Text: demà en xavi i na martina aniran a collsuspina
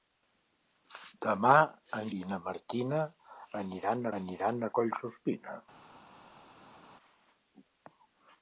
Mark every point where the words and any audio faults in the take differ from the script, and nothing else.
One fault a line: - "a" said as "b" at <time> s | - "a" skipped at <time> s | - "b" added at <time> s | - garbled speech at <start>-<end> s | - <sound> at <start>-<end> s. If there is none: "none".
- "xavi" skipped at 2.1 s
- "aniran" added at 4.2 s